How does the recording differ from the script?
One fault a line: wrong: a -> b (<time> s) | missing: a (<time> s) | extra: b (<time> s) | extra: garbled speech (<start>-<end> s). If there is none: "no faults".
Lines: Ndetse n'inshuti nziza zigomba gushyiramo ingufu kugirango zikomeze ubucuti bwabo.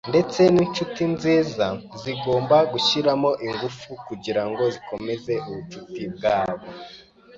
no faults